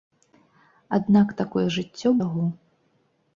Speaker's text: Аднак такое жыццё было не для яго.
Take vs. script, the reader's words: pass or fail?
fail